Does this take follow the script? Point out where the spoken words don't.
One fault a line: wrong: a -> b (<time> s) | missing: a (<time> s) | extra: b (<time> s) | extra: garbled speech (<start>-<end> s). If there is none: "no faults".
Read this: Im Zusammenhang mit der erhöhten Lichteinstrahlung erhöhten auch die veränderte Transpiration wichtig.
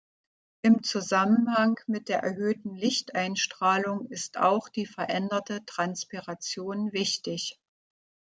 wrong: erhöhten -> ist (4.1 s)